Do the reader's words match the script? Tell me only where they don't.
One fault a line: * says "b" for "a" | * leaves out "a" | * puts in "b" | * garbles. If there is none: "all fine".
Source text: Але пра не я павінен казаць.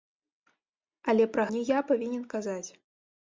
all fine